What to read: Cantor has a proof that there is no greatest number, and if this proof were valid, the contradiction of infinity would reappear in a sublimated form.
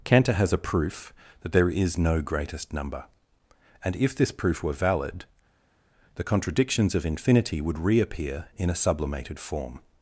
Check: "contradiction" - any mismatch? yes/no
yes